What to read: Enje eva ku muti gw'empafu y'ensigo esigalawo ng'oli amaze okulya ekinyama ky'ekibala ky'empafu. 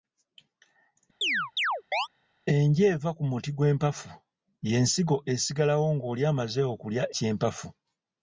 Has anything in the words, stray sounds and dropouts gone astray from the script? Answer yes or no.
yes